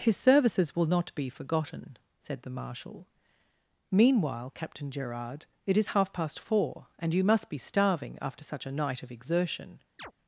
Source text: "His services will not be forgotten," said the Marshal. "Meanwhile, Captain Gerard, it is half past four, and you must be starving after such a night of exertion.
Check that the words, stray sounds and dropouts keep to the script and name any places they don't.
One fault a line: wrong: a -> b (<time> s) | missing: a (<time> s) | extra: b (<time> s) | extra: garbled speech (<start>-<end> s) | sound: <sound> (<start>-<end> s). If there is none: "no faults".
sound: chirp (10.0-10.1 s)